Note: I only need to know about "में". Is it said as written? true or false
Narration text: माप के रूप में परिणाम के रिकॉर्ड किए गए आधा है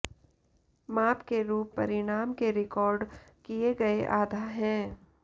false